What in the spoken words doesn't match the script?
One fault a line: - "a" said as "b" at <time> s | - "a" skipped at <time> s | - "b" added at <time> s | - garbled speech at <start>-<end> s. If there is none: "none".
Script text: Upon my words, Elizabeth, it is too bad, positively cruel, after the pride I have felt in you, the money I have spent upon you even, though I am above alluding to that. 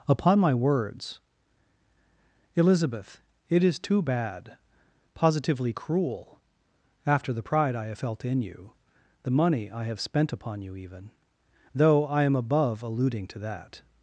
none